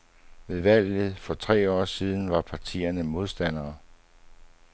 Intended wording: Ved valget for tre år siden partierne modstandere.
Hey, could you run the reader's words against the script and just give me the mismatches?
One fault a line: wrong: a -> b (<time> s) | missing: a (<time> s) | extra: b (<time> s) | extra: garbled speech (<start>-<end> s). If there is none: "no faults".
extra: var (2.3 s)